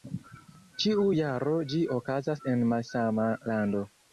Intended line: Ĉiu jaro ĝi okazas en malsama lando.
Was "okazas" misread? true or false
false